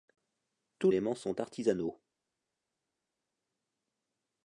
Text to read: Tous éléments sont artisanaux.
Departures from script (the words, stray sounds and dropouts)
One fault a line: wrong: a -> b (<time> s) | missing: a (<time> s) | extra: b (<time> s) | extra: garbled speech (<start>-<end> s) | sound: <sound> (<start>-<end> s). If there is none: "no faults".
no faults